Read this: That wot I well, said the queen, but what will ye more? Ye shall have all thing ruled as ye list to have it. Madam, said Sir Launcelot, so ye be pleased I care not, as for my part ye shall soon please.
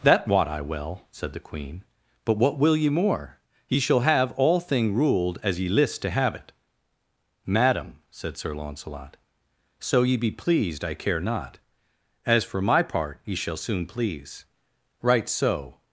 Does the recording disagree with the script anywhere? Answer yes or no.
yes